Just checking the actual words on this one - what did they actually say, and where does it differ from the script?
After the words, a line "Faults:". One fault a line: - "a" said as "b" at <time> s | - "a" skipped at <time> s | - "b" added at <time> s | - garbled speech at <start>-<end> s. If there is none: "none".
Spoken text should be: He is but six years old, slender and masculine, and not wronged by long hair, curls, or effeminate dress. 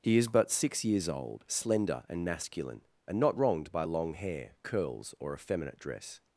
He is but six years old, slender and masculine, and not wronged by long hair, curls, or effeminate dress.
Faults:
none